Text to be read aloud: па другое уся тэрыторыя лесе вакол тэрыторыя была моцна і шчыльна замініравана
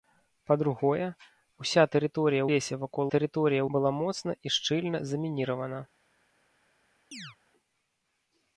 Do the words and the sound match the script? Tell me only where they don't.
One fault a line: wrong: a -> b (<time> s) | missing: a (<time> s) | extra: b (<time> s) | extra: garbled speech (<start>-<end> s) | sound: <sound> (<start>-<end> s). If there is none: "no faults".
sound: chirp (7.1-7.4 s)